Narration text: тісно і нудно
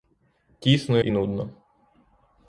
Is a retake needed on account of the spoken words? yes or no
no